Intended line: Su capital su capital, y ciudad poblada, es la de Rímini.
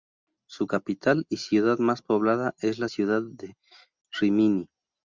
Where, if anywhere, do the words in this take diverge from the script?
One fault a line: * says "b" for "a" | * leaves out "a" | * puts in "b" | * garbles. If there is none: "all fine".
* leaves out "su capital"
* puts in "más"
* puts in "ciudad"